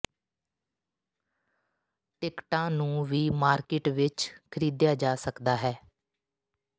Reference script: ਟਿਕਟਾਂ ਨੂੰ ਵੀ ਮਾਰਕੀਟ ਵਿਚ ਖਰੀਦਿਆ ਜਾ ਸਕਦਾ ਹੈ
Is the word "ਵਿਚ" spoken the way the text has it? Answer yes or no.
yes